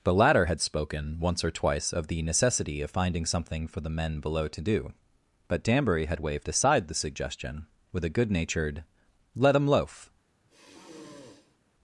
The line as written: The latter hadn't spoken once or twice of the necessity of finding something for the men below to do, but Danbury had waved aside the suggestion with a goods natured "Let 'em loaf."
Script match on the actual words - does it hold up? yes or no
no